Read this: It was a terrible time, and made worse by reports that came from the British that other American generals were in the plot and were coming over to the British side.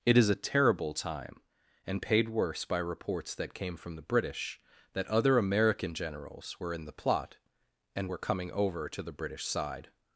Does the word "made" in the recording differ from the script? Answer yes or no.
yes